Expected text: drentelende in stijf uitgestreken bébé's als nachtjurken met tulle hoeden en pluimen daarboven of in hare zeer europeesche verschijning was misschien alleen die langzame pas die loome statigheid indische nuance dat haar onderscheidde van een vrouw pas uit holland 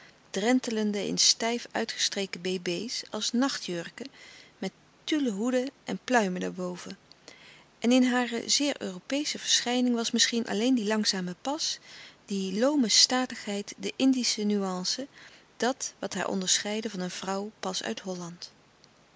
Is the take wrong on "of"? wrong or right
wrong